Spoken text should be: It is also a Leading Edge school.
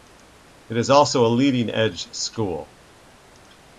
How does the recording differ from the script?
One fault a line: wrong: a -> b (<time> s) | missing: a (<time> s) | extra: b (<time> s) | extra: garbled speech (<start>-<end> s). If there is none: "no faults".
no faults